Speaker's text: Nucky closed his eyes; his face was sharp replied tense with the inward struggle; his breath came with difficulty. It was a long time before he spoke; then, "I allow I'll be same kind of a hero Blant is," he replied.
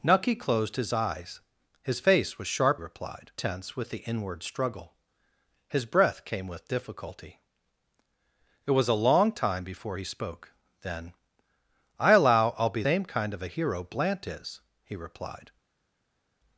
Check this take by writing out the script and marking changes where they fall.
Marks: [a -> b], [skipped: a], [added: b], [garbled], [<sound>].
Nucky closed his eyes; his face was sharp replied tense with the inward struggle; his breath came with difficulty. It was a long time before he spoke; then, "I allow I'll be same kind of a hero Blant is," he replied.